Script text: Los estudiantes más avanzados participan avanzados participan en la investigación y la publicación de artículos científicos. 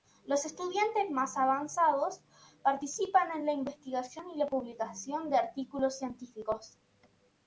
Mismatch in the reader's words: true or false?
true